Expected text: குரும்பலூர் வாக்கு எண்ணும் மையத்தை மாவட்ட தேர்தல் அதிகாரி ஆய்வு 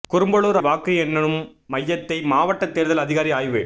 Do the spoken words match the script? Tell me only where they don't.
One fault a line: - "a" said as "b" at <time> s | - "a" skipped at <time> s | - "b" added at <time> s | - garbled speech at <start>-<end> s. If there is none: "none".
none